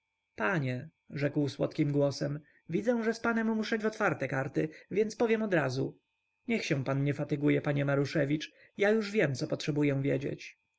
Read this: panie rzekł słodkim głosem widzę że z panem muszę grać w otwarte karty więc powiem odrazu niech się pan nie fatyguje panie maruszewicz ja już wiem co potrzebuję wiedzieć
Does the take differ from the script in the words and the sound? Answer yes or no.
yes